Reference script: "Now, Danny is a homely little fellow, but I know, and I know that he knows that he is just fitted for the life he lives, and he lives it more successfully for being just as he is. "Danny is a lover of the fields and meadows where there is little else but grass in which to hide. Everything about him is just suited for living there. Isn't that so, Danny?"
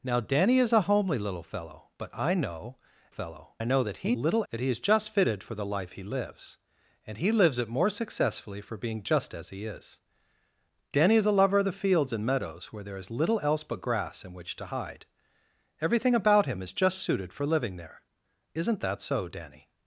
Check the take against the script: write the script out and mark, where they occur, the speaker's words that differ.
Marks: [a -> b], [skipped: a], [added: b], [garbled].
"Now, Danny is a homely little fellow, but I know, [and -> fellow] I know that he [knows -> little] that he is just fitted for the life he lives, and he lives it more successfully for being just as he is. "Danny is a lover of the fields and meadows where there is little else but grass in which to hide. Everything about him is just suited for living there. Isn't that so, Danny?"